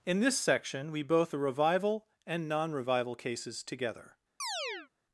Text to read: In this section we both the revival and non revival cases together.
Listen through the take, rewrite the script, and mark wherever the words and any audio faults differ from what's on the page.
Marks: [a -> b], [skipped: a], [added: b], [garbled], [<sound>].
In this section we both the revival and non revival cases together. [chirp]